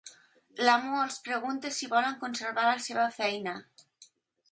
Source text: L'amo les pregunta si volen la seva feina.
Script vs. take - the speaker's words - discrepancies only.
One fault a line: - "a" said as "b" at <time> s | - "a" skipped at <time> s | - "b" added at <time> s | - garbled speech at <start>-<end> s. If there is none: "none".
- "les" said as "els" at 1.0 s
- "conservar" added at 2.2 s